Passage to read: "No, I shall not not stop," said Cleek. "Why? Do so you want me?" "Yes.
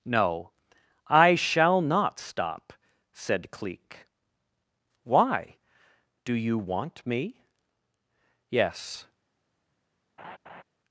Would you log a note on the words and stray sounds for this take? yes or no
yes